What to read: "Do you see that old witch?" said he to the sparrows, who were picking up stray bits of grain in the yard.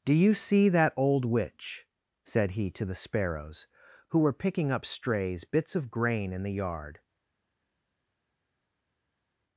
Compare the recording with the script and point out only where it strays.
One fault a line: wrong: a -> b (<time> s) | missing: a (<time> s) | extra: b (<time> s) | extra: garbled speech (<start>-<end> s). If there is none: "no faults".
wrong: stray -> strays (4.8 s)